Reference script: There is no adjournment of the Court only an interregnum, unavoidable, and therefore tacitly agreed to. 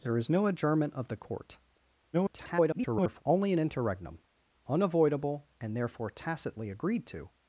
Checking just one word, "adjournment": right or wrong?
right